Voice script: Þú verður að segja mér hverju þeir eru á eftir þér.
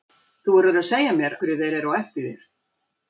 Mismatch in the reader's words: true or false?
false